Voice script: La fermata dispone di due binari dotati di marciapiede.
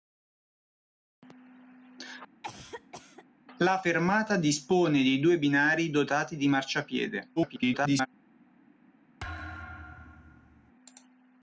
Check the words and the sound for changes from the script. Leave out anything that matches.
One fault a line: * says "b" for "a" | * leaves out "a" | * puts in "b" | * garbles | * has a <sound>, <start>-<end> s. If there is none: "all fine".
* has a cough, 2.4-3.2 s
* garbles
* has a thud, 9.2-10.7 s